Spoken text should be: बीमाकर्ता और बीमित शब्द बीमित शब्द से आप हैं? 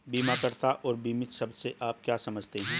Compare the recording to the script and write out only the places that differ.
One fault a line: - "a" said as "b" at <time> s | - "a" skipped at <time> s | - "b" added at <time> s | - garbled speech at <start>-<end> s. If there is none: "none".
- "बीमित शब्द से आप" said as "से आप क्या समझते" at 1.5 s